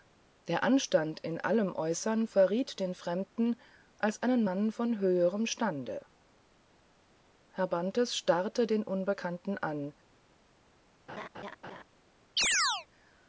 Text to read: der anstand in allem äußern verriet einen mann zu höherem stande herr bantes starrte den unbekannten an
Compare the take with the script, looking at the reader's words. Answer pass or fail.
fail